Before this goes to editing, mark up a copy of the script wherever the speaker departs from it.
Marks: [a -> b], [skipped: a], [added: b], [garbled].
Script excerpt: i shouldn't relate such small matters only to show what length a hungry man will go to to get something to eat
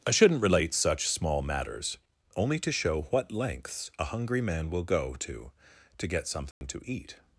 i shouldn't relate such small matters only to show what [length -> lengths] a hungry man will go to to get something to eat